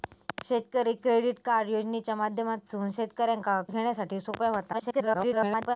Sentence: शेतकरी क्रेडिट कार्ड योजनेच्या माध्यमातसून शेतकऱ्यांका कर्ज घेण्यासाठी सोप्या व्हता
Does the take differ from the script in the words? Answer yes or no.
yes